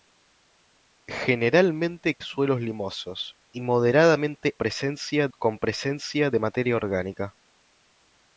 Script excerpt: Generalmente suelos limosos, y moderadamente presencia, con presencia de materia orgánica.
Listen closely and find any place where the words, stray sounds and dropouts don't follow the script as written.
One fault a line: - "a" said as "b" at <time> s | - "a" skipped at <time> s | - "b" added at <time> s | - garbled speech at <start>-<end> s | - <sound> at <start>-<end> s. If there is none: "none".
none